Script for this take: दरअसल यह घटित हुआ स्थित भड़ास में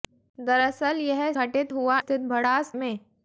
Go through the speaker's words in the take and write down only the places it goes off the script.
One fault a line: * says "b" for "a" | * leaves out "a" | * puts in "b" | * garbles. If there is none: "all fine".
all fine